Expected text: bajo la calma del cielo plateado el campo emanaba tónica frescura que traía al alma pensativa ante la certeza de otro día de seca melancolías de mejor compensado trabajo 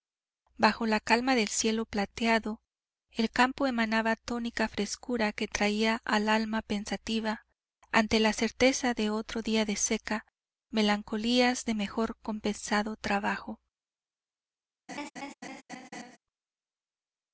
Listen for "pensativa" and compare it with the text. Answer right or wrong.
right